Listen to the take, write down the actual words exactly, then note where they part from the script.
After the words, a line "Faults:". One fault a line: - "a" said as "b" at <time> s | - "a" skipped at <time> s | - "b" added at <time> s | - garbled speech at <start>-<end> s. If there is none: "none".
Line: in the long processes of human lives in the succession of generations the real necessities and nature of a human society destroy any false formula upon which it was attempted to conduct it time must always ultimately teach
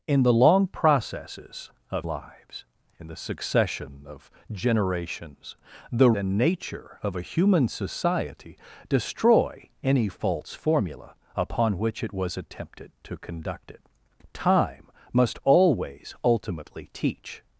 in the long processes of lives in the succession of generations the and nature of a human society destroy any false formula upon which it was attempted to conduct it time must always ultimately teach
Faults:
- "human" skipped at 2.1 s
- "real necessities" skipped at 6.1 s